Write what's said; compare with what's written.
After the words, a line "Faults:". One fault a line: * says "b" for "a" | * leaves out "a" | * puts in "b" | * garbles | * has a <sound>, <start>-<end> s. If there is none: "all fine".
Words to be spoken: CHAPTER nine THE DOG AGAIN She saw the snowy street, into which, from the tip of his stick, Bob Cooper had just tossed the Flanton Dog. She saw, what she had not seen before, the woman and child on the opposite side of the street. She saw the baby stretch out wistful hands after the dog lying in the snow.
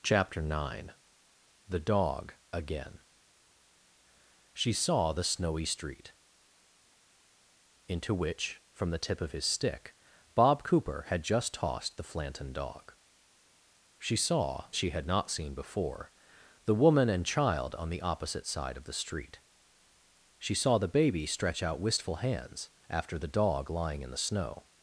CHAPTER nine THE DOG AGAIN She saw the snowy street, into which, from the tip of his stick, Bob Cooper had just tossed the Flanton Dog. She saw, she had not seen before, the woman and child on the opposite side of the street. She saw the baby stretch out wistful hands after the dog lying in the snow.
Faults:
* leaves out "what"